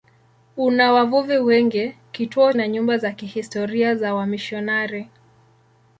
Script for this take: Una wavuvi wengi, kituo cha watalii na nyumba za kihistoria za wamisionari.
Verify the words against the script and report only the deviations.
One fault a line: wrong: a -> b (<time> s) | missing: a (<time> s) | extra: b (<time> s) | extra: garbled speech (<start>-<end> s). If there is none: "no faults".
missing: cha watalii (2.5 s)